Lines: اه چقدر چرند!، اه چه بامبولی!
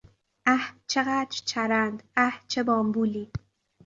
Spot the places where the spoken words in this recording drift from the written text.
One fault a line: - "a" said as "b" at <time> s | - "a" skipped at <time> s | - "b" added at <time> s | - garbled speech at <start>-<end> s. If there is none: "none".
none